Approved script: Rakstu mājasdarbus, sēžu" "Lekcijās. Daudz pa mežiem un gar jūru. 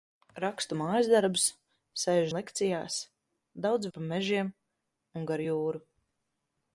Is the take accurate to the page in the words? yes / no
yes